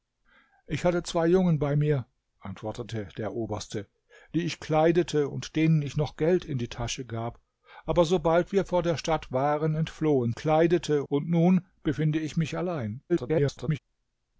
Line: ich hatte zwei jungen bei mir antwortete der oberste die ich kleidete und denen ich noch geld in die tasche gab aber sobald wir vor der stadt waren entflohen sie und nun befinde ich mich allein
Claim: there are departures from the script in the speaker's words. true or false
true